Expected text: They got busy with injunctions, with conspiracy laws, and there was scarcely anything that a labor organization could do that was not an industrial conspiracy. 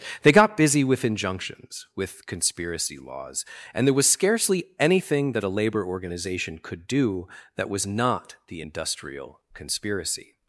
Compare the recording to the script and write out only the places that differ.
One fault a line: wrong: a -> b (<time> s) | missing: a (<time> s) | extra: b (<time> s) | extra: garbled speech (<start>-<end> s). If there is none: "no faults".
wrong: an -> the (8.5 s)